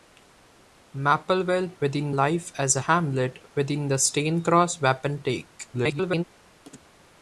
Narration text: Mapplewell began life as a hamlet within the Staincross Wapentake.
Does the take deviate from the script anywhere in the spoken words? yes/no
yes